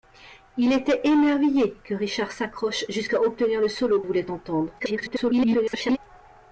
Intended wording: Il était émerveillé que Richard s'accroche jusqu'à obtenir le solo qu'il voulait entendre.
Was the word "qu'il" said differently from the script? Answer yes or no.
yes